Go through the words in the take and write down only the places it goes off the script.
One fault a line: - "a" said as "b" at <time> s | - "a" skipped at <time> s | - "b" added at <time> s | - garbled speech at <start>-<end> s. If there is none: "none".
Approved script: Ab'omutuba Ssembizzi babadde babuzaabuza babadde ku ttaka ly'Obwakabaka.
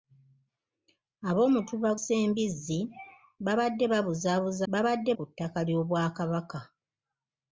none